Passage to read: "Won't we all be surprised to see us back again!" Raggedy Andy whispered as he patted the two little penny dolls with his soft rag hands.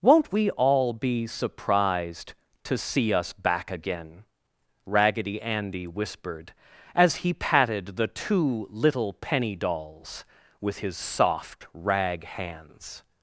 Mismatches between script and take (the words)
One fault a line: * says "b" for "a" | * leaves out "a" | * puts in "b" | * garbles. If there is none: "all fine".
all fine